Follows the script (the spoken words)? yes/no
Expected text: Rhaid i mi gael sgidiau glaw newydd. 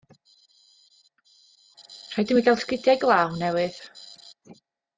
yes